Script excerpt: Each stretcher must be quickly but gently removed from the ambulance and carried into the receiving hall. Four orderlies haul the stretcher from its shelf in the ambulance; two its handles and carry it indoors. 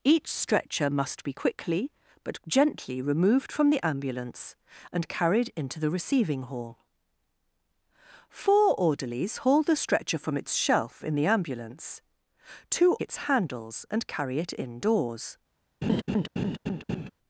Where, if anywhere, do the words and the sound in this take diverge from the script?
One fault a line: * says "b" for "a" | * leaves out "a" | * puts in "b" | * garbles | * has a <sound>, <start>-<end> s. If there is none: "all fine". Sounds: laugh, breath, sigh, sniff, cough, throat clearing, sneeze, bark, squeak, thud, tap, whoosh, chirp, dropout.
* has a laugh, 15.8-17.1 s